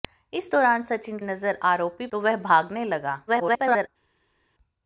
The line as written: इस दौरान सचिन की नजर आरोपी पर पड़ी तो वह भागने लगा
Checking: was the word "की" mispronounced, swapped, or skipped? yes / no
yes